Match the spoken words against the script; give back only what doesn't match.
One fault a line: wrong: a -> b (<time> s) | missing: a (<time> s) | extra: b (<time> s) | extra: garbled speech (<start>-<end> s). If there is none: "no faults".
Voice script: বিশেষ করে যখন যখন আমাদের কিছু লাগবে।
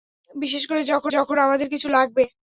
no faults